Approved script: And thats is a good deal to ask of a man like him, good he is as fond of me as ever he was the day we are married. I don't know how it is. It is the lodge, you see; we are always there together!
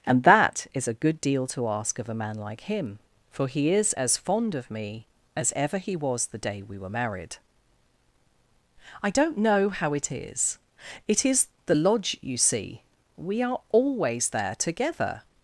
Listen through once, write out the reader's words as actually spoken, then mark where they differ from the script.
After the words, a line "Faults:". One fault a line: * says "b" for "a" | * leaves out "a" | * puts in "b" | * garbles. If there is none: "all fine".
And that is a good deal to ask of a man like him, for he is as fond of me as ever he was the day we were married. I don't know how it is. It is the lodge, you see; we are always there together!
Faults:
* says "that" for "thats"
* says "for" for "good"
* says "were" for "are"